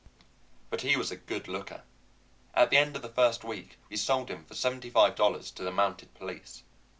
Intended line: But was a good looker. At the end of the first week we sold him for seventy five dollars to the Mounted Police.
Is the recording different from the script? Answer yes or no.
yes